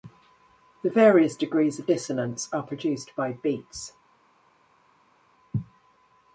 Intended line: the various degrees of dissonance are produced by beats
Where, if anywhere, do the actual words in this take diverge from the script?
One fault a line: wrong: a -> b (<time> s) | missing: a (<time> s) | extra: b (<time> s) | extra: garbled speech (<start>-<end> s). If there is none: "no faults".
no faults